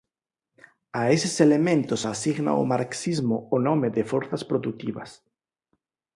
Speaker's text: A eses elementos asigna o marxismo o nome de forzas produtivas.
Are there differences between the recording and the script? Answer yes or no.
no